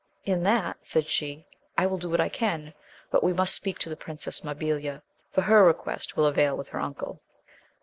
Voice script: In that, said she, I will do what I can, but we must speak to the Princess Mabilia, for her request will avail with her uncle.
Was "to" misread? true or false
false